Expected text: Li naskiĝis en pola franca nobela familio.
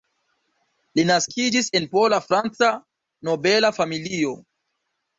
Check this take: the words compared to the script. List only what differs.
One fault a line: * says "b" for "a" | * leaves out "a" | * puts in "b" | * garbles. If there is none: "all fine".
all fine